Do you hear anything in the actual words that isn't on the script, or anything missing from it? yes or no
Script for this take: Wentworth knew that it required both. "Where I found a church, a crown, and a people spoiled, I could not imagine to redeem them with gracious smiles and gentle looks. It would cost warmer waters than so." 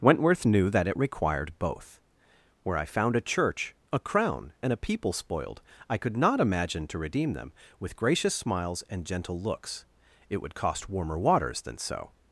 no